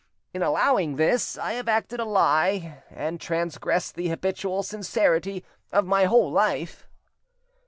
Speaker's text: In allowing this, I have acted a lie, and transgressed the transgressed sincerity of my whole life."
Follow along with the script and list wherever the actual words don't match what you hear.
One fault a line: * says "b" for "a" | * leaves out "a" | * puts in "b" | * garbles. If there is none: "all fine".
* says "habitual" for "transgressed"